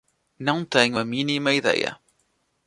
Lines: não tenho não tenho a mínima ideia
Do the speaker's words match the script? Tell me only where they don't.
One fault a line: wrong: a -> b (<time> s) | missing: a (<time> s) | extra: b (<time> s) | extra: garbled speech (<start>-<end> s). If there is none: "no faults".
missing: não tenho (1.0 s)